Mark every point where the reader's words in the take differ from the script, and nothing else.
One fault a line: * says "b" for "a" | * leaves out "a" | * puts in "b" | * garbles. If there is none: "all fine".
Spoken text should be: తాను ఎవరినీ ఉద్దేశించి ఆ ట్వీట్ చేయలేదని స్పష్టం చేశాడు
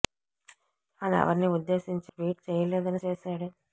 * leaves out "ఆ"
* leaves out "స్పష్టం"